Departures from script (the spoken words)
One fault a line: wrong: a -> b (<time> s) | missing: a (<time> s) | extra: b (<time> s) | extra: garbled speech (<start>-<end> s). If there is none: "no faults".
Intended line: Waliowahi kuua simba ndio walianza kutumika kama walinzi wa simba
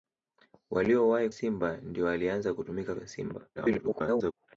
missing: kuua (1.3 s)
missing: kama walinzi (2.9 s)
extra: garbled speech (3.6-4.3 s)